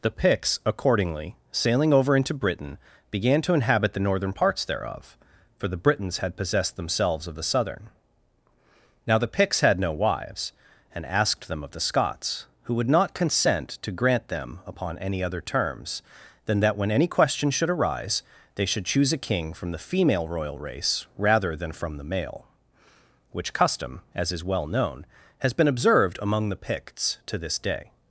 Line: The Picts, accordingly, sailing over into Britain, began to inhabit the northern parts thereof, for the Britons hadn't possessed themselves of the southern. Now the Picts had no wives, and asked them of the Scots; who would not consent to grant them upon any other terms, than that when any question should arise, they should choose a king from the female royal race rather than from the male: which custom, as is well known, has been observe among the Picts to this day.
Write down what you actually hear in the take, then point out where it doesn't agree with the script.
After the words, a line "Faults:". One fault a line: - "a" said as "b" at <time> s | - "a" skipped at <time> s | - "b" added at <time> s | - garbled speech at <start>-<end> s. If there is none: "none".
The Picts, accordingly, sailing over into Britain, began to inhabit the northern parts thereof, for the Britons had possessed themselves of the southern. Now the Picts had no wives, and asked them of the Scots; who would not consent to grant them upon any other terms, than that when any question should arise, they should choose a king from the female royal race rather than from the male: which custom, as is well known, has been observed among the Picts to this day.
Faults:
- "hadn't" said as "had" at 6.2 s
- "observe" said as "observed" at 25.7 s